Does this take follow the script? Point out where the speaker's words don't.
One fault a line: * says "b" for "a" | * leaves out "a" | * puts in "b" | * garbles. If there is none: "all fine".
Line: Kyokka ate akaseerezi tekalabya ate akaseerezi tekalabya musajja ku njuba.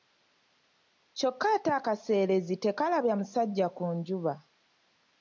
* leaves out "ate akaseerezi tekalabya"